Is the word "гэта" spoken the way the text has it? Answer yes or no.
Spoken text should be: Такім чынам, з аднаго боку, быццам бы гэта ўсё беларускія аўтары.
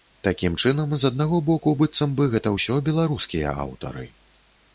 yes